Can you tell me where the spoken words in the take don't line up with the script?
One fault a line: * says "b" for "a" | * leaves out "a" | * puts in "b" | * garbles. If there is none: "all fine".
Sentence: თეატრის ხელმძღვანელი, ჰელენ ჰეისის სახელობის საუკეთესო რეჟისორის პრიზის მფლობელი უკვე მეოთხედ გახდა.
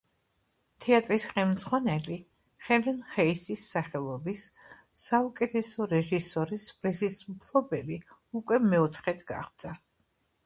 all fine